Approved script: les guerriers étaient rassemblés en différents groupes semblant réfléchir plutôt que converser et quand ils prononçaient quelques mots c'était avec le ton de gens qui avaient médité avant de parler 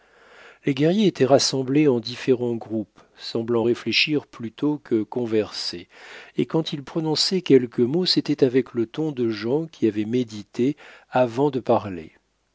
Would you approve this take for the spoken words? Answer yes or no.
yes